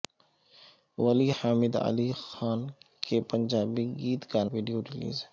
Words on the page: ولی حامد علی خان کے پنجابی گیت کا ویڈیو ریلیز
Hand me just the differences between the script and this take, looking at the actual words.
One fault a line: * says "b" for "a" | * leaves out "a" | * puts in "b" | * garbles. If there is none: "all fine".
all fine